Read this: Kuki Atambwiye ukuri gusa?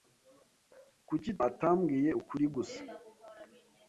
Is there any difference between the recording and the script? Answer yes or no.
no